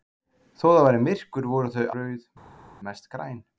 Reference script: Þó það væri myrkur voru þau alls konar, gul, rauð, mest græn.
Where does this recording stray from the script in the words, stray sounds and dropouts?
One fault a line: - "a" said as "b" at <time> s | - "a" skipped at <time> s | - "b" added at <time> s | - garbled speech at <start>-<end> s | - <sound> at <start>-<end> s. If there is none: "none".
- "alls konar gul" skipped at 1.9 s